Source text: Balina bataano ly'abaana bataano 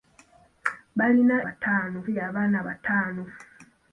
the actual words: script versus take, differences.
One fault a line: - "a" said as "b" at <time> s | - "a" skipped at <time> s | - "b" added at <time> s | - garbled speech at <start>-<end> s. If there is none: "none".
none